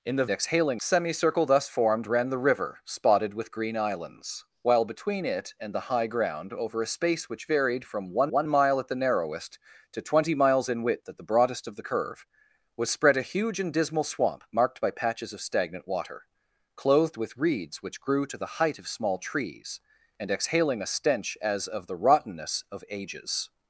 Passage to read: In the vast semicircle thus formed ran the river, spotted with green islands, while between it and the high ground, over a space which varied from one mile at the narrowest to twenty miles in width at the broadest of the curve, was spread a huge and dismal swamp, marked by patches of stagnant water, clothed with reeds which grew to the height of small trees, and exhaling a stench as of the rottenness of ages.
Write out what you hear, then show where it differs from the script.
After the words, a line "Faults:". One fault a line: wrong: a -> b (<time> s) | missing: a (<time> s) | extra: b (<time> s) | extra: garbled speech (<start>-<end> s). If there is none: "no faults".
In the exhaling semicircle thus formed ran the river, spotted with green islands, while between it and the high ground, over a space which varied from one one mile at the narrowest to twenty miles in width at the broadest of the curve, was spread a huge and dismal swamp, marked by patches of stagnant water, clothed with reeds which grew to the height of small trees, and exhaling a stench as of the rottenness of ages.
Faults:
wrong: vast -> exhaling (0.3 s)
extra: one (8.3 s)